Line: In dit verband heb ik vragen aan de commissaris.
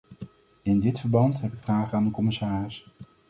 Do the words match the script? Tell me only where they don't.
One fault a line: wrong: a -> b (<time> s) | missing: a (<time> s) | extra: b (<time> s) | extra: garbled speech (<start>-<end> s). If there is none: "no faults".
no faults